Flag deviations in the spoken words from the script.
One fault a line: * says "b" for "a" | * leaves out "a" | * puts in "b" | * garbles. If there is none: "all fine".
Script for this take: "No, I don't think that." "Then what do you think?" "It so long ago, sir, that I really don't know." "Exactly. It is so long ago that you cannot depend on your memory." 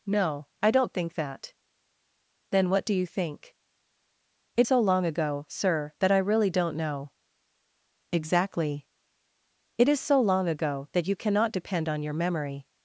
all fine